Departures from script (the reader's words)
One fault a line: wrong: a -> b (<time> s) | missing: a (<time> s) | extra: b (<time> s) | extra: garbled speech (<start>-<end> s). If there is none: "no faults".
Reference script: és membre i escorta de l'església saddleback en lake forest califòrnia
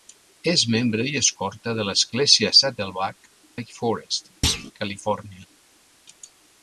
missing: en (3.3 s)